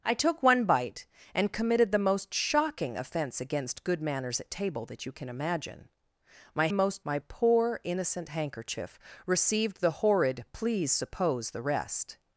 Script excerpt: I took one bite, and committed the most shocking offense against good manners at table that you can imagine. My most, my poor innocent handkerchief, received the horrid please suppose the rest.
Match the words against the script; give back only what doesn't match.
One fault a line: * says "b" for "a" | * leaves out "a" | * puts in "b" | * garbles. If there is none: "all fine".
all fine